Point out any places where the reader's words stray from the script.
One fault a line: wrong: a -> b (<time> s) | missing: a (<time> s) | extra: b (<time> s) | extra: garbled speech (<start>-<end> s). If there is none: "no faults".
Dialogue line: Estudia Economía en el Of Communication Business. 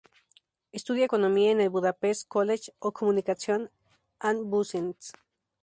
extra: Budapest College (1.7 s)
extra: and (4.2 s)